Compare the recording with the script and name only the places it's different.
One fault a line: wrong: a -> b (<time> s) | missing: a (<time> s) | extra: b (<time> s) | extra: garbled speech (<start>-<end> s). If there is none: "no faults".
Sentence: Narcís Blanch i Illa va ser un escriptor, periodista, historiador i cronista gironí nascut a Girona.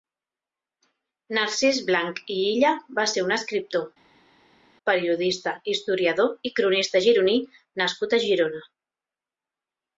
no faults